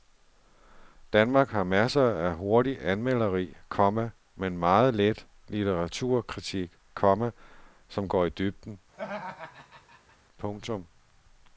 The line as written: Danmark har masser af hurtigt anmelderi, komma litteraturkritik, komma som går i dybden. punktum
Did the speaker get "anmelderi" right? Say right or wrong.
right